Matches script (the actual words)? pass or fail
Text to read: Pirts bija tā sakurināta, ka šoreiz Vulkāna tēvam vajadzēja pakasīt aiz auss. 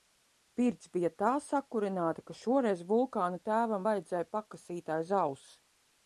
pass